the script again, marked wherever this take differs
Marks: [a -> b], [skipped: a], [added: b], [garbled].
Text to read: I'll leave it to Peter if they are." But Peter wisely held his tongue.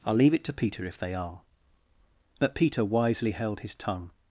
I'll leave it to Peter if they are." But Peter wisely held his tongue.